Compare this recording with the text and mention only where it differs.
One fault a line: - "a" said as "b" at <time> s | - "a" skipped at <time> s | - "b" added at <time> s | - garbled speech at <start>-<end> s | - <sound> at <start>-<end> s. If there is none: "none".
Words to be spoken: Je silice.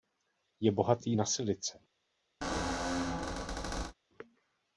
- "bohatý na" added at 0.7 s
- squeak at 2.4-3.9 s